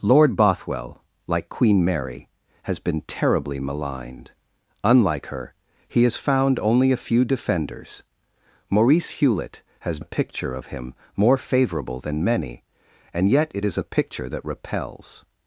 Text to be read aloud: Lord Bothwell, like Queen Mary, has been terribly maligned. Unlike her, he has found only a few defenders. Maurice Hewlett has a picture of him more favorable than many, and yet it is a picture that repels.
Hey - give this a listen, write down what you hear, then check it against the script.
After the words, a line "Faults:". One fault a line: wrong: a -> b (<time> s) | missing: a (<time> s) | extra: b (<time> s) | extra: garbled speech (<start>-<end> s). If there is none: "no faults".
Lord Bothwell, like Queen Mary, has been terribly maligned. Unlike her, he has found only a few defenders. Maurice Hewlett has a picture of him more favorable than many, and yet it is a picture that repels.
Faults:
no faults